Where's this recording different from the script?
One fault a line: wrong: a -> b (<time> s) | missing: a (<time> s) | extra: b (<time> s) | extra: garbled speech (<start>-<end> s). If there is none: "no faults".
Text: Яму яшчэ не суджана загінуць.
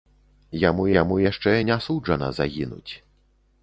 extra: яму (1.0 s)